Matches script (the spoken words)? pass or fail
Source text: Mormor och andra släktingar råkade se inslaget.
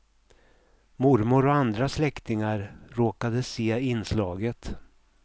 pass